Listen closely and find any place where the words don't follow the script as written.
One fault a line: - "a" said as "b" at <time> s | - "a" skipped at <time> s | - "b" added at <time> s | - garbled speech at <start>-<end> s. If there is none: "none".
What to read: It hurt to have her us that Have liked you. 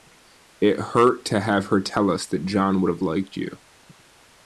- "tell" added at 1.8 s
- "John would" added at 2.5 s